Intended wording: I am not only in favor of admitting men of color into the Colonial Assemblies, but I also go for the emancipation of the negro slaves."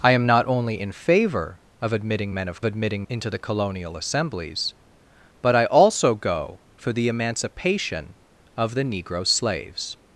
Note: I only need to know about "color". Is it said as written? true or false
false